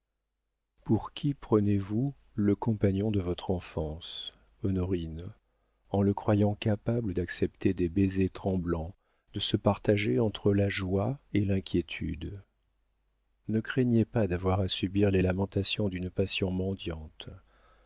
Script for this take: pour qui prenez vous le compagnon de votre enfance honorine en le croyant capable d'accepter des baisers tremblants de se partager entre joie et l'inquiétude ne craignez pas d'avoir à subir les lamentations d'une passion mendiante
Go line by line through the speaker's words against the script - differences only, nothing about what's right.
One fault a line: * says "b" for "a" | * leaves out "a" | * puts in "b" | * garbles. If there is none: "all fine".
* puts in "la"